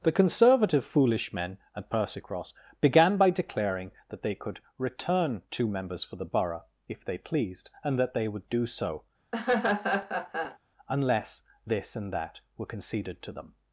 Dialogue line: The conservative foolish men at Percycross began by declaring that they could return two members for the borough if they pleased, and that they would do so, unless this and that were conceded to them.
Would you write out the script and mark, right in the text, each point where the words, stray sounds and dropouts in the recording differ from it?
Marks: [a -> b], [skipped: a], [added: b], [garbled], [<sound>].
The conservative foolish men at Percycross began by declaring that they could return two members for the borough if they pleased, and that they would do so, [laugh] unless this and that were conceded to them.